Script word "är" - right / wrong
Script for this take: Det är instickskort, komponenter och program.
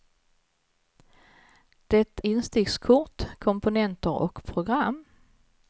wrong